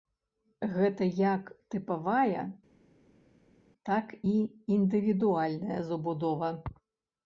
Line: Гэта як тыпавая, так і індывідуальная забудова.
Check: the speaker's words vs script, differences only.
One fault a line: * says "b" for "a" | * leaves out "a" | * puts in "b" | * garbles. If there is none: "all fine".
all fine